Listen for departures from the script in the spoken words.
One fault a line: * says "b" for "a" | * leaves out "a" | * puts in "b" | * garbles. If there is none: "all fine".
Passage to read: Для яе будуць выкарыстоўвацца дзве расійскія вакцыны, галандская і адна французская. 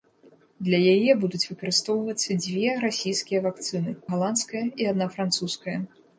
all fine